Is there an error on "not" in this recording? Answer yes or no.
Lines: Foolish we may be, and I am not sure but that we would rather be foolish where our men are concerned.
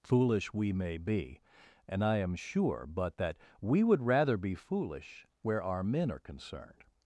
yes